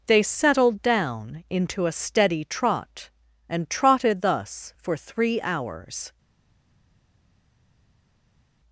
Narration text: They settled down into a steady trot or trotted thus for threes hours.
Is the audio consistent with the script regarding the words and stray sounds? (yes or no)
no